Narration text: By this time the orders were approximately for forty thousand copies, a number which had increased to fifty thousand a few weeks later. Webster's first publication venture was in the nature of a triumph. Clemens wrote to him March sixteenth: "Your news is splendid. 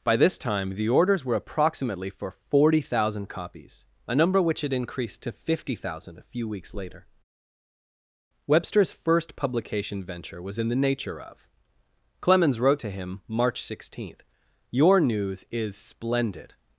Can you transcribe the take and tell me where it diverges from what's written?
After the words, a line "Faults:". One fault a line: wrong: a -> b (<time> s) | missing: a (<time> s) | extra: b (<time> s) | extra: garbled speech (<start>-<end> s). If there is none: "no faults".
By this time the orders were approximately for forty thousand copies, a number which had increased to fifty thousand a few weeks later. Webster's first publication venture was in the nature of. Clemens wrote to him March sixteenth: "Your news is splendid.
Faults:
missing: a triumph (11.5 s)